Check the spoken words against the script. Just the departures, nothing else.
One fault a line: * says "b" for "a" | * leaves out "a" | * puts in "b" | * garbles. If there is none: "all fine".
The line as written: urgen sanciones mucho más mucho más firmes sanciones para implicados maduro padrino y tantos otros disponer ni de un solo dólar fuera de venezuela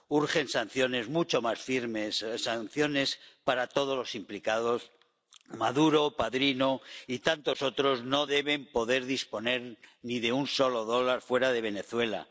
* leaves out "mucho más"
* puts in "todos los"
* puts in "no deben poder"